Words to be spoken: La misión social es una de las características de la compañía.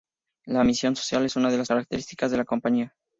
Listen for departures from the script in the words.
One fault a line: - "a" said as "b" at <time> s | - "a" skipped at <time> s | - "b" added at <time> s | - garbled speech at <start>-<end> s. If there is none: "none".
none